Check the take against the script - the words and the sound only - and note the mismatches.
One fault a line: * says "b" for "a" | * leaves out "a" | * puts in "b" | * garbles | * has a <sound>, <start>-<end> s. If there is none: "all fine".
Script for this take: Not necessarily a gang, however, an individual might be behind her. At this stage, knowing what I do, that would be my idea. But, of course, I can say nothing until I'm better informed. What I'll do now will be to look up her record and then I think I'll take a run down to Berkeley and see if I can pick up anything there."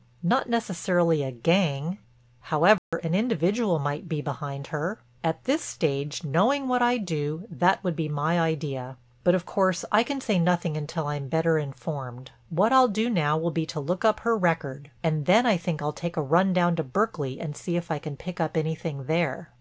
* has a dropout, 2.8-2.9 s